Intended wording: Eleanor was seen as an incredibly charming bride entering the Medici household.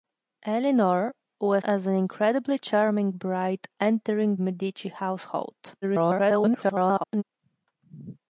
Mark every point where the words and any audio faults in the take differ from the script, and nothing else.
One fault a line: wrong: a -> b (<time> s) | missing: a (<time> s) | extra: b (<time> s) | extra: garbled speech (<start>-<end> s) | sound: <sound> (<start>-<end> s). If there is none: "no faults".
missing: seen (1.6 s)
missing: the (4.4 s)
extra: garbled speech (5.8-7.2 s)